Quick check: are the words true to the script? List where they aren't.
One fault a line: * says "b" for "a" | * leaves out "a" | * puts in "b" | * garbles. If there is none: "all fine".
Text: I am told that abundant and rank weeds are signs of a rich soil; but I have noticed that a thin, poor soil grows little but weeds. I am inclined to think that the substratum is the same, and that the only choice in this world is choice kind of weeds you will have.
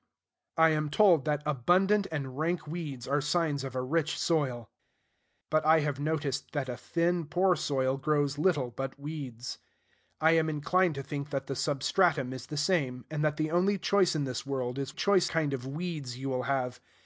all fine